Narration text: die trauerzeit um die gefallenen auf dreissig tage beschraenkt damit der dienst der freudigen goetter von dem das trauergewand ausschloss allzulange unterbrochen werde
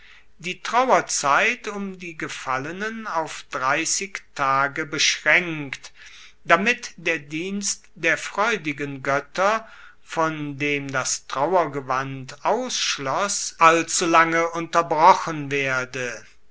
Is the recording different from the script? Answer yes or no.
no